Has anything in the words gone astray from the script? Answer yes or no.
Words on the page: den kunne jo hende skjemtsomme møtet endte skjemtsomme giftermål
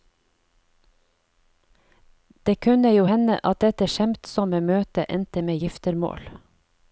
yes